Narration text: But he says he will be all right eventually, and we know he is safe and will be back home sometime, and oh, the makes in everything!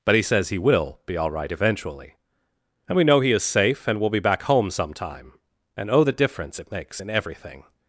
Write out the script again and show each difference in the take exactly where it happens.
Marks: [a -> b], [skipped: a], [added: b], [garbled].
But he says he will be all right eventually, and we know he is safe and will be back home sometime, and oh, the [added: difference it] makes in everything!